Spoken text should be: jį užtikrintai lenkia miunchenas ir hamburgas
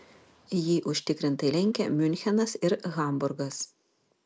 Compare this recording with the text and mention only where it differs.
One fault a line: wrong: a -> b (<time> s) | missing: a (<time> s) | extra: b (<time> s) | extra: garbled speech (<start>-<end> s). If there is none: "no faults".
no faults